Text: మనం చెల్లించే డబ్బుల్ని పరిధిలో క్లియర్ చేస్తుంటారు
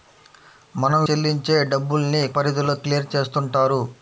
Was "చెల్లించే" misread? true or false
false